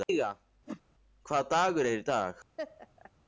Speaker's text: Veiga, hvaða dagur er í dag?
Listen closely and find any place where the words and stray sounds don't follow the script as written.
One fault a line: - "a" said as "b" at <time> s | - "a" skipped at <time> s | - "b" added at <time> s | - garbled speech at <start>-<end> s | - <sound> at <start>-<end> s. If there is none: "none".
- whoosh at 0.7-0.8 s
- laugh at 2.6-3.1 s